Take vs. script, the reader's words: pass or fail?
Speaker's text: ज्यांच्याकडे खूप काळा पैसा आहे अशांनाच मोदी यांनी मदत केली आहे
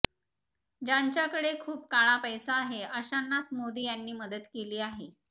pass